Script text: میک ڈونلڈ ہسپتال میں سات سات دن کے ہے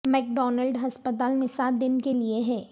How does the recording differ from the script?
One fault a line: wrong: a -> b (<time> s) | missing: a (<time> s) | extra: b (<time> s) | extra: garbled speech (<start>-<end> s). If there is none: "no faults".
missing: سات (1.8 s)
extra: لئے (2.1 s)